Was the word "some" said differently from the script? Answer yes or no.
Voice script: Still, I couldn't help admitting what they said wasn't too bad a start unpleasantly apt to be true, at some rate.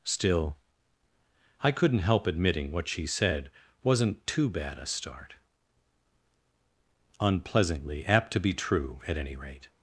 yes